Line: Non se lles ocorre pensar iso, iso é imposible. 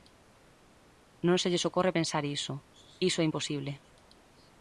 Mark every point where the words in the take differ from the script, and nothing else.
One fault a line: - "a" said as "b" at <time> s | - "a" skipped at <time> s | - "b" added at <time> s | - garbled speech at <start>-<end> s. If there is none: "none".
none